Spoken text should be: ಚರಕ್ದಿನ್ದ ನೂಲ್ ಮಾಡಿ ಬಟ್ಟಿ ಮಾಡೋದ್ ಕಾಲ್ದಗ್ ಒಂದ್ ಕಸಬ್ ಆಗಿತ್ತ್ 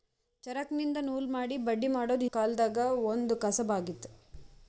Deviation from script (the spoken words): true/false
false